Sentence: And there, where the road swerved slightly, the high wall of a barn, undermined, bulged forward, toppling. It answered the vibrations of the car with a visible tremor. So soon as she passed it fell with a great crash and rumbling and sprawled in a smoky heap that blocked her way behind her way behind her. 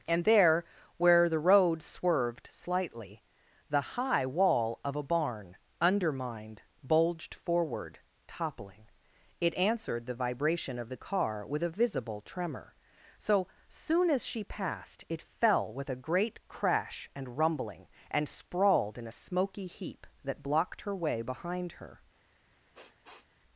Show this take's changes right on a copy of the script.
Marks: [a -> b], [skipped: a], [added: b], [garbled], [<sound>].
And there, where the road swerved slightly, the high wall of a barn, undermined, bulged forward, toppling. It answered the [vibrations -> vibration] of the car with a visible tremor. So soon as she passed it fell with a great crash and rumbling and sprawled in a smoky heap that blocked her way behind her [skipped: way behind her.] [sniff]